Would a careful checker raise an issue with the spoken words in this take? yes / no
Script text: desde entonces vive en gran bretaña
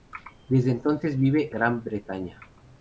yes